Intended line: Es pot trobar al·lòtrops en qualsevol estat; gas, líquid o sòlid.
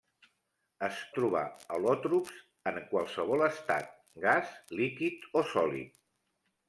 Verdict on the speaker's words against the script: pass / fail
fail